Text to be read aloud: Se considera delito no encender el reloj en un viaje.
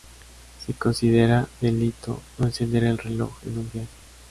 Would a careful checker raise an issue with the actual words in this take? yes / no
no